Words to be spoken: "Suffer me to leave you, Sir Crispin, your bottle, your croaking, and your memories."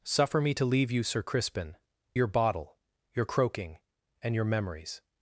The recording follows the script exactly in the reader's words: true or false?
true